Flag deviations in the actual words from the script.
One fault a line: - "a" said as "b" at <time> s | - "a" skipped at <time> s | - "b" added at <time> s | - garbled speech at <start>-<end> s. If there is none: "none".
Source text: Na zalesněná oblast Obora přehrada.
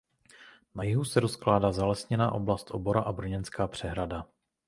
- "jihu se rozkládá" added at 0.8 s
- "a Brněnská" added at 3.0 s